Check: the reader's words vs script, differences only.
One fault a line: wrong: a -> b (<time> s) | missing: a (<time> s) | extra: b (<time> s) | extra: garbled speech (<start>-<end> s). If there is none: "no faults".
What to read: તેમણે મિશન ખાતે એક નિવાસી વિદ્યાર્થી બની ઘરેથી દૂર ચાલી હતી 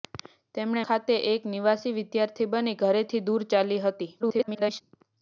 missing: મિશન (0.8 s)
extra: garbled speech (4.2-4.8 s)